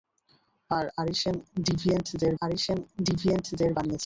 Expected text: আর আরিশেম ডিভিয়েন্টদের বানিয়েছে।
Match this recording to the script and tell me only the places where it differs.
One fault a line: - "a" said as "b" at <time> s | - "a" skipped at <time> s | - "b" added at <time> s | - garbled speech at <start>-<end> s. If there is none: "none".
- "আরিশেম ডিভিয়েন্টদের" added at 2.4 s